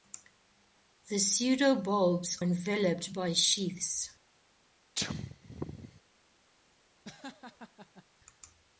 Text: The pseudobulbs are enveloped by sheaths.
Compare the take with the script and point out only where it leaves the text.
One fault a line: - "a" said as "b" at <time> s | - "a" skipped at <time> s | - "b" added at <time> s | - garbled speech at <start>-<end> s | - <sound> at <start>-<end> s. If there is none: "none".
- "are" skipped at 2.4 s
- sneeze at 5.0-6.0 s
- laugh at 7.0-8.0 s